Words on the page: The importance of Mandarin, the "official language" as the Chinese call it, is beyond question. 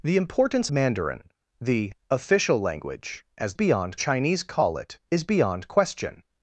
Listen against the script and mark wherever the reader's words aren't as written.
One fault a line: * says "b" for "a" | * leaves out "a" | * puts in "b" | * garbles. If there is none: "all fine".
* leaves out "of"
* says "beyond" for "the"